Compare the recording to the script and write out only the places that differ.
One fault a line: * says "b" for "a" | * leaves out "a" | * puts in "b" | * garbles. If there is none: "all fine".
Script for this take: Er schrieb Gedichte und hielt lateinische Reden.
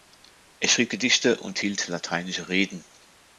all fine